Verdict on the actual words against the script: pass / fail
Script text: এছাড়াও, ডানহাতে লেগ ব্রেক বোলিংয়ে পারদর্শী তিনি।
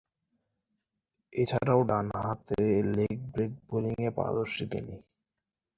pass